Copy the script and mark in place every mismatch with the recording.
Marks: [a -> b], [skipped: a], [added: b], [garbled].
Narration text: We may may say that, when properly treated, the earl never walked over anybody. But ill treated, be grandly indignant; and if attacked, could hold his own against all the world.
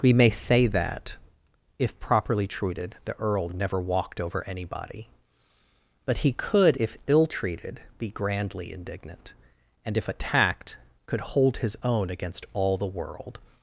We may [skipped: may] say that, [when -> if] properly treated, the earl never walked over anybody. But [added: he could if] ill treated, be grandly indignant; and if attacked, could hold his own against all the world.